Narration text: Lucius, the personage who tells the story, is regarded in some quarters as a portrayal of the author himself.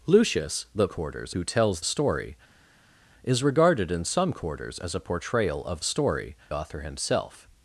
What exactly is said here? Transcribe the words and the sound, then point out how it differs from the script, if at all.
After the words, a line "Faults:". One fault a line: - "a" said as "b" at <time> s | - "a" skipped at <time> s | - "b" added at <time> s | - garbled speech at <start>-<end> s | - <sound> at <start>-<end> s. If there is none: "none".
Lucius, the quarters who tells story, is regarded in some quarters as a portrayal of story author himself.
Faults:
- "personage" said as "quarters" at 0.9 s
- "the" skipped at 1.8 s
- "the" said as "story" at 5.8 s